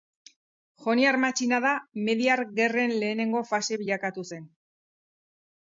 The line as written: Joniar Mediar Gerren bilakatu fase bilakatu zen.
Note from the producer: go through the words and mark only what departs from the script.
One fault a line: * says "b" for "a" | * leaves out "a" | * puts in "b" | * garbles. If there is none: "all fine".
* puts in "matxinada"
* says "lehenengo" for "bilakatu"